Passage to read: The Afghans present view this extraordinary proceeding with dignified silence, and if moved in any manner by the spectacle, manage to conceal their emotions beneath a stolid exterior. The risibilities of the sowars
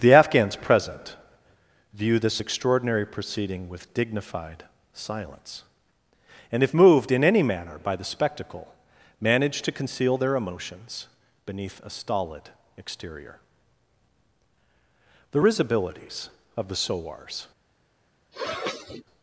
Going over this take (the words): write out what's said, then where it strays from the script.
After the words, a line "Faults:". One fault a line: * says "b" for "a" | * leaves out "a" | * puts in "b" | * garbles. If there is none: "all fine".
The Afghans present view this extraordinary proceeding with dignified silence, and if moved in any manner by the spectacle, manage to conceal their emotions beneath a stolid exterior. The risibilities of the sowars
Faults:
all fine